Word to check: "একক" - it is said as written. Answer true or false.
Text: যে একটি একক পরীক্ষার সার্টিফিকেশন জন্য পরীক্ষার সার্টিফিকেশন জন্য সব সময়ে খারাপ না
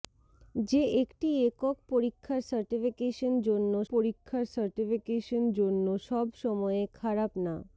true